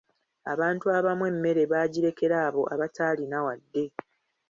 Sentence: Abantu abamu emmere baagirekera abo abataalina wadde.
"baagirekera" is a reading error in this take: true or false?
false